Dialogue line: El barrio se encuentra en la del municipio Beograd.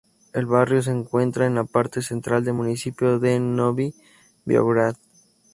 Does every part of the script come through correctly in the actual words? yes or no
no